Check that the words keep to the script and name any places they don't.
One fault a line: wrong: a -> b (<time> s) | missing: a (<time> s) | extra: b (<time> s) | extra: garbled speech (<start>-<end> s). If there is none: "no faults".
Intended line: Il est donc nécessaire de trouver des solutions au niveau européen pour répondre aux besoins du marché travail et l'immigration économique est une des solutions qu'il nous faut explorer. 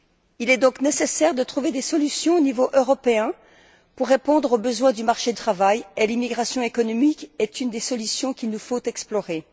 no faults